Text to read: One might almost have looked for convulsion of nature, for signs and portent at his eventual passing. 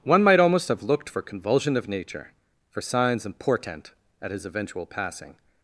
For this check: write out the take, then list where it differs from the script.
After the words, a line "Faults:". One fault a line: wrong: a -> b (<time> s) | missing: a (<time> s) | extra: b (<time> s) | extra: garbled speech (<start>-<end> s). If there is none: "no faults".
One might almost have looked for convulsion of nature, for signs and portent at his eventual passing.
Faults:
no faults